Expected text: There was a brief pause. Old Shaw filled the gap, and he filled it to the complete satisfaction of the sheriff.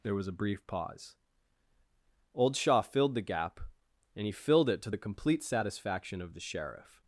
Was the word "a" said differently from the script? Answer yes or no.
no